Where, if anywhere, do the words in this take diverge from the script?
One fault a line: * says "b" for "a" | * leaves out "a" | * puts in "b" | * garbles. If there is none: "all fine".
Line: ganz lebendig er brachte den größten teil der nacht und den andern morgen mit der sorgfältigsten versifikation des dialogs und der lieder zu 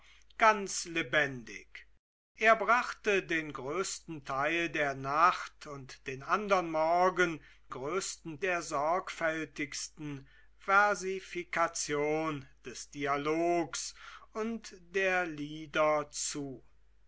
* says "größten" for "mit"